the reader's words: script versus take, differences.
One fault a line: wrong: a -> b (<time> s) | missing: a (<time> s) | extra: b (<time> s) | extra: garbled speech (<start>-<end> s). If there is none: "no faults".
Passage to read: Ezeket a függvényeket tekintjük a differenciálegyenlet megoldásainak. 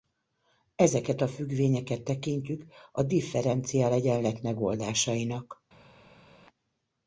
no faults